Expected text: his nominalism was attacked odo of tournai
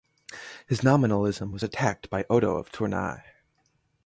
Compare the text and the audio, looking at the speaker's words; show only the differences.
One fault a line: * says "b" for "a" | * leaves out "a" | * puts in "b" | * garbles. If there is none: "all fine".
* puts in "by"